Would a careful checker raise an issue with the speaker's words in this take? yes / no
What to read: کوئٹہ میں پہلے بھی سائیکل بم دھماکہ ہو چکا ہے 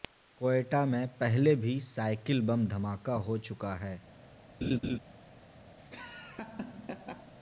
no